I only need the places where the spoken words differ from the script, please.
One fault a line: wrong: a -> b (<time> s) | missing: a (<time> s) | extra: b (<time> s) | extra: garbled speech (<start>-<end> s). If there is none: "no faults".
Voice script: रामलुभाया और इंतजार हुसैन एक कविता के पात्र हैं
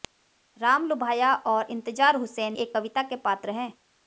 no faults